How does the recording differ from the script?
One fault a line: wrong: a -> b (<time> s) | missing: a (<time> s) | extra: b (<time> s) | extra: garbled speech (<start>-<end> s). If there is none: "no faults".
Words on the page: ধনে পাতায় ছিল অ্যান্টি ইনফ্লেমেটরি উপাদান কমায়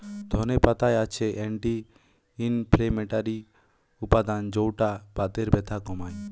wrong: ছিল -> আছে (1.0 s)
extra: যৌটা বাতের ব্যথা (4.5 s)